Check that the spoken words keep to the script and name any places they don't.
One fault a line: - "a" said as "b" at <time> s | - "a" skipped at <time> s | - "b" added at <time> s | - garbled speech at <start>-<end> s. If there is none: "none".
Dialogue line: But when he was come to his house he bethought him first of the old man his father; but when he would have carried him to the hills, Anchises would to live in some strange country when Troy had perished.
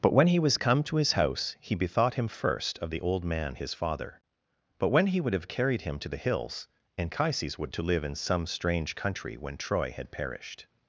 none